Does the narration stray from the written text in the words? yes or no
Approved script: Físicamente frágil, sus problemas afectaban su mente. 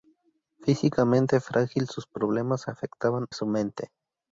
no